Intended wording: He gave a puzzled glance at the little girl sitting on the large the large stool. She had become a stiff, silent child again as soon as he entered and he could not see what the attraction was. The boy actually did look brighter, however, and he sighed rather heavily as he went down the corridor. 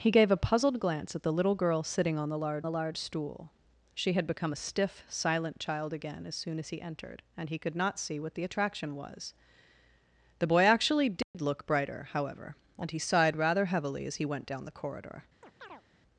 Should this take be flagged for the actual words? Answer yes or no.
no